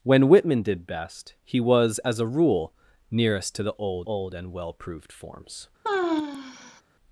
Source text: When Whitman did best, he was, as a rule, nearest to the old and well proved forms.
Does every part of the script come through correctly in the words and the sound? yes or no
no